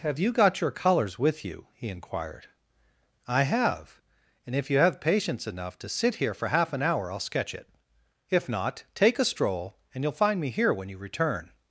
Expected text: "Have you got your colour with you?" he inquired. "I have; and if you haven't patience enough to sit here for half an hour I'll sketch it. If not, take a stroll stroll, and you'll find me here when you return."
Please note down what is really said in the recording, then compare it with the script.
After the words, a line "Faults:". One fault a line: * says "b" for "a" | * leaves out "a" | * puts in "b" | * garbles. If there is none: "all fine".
"Have you got your colours with you?" he inquired. "I have; and if you have patience enough to sit here for half an hour I'll sketch it. If not, take a stroll, and you'll find me here when you return."
Faults:
* says "colours" for "colour"
* says "have" for "haven't"
* leaves out "stroll"